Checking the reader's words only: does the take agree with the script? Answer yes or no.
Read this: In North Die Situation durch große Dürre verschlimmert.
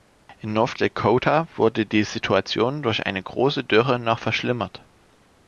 no